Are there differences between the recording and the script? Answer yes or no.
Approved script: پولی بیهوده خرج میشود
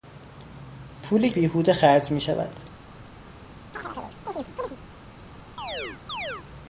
no